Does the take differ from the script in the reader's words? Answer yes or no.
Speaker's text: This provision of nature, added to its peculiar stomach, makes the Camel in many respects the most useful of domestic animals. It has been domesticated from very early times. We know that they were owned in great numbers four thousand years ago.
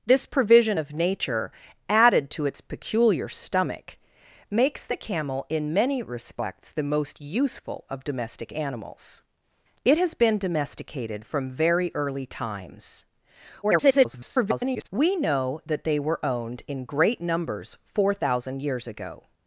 yes